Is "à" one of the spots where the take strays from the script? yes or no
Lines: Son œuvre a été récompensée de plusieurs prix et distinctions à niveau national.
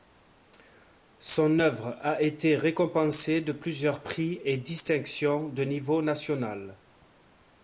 yes